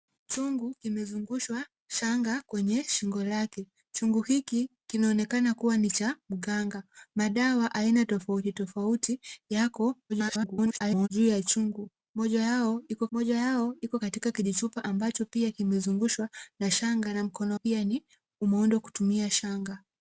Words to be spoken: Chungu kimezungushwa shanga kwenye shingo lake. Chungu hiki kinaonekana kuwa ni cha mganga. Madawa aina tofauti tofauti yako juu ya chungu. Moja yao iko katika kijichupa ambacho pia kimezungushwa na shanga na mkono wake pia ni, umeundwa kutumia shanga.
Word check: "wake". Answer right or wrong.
wrong